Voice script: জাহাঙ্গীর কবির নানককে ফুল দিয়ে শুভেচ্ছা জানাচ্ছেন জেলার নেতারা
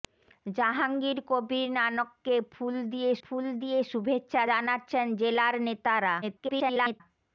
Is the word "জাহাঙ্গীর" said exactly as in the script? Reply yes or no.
yes